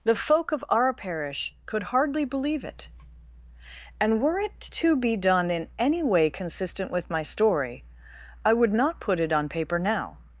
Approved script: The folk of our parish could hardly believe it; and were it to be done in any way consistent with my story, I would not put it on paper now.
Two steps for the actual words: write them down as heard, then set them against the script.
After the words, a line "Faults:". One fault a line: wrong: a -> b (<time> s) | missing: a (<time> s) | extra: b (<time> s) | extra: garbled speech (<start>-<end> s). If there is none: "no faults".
The folk of our parish could hardly believe it; and were it to be done in any way consistent with my story, I would not put it on paper now.
Faults:
no faults